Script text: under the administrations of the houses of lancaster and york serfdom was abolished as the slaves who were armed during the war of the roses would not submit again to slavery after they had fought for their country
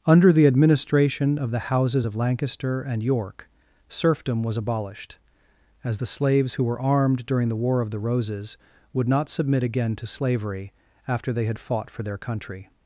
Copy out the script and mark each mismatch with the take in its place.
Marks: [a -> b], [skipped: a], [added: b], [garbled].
under the [administrations -> administration] of the houses of lancaster and york serfdom was abolished as the slaves who were armed during the war of the roses would not submit again to slavery after they had fought for their country